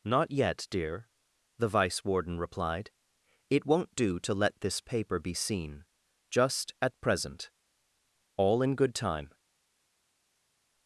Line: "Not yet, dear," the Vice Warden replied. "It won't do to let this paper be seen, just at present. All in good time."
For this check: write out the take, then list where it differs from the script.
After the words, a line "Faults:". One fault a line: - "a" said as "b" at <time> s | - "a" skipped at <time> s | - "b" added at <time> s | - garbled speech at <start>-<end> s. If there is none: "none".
"Not yet, dear," the Vice Warden replied. "It won't do to let this paper be seen, just at present. All in good time."
Faults:
none